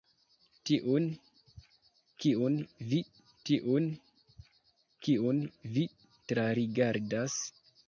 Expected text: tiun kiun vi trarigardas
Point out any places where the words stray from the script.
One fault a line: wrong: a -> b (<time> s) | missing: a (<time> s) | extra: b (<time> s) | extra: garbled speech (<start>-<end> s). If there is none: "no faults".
extra: tiun kiun vi (3.5 s)